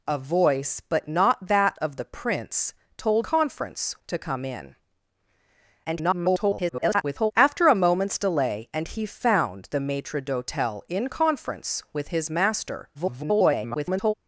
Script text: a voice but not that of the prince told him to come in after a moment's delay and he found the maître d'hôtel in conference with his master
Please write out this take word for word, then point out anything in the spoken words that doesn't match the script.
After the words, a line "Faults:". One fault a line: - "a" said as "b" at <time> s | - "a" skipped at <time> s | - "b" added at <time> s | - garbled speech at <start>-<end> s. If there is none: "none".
a voice but not that of the prince told conference to come in [garbled] after a moment's delay and he found the maître d'hôtel in conference with his master [garbled]
Faults:
- "him" said as "conference" at 3.2 s
- garbled speech at 5.8-7.3 s
- garbled speech at 12.9-14.1 s